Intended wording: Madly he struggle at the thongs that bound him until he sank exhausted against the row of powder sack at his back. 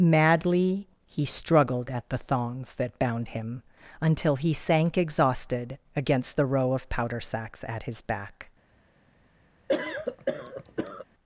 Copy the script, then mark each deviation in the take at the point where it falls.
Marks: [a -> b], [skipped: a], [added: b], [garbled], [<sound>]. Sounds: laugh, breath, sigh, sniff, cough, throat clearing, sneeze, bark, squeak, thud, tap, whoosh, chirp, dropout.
Madly he [struggle -> struggled] at the thongs that bound him until he sank exhausted against the row of powder [sack -> sacks] at his back. [cough]